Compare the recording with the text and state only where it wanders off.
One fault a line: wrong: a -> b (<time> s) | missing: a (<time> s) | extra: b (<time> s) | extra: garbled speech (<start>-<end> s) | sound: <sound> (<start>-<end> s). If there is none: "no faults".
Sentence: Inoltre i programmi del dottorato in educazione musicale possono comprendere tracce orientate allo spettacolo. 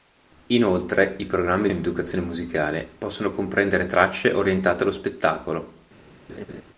missing: del dottorato (1.7 s)
sound: laugh (6.3-6.6 s)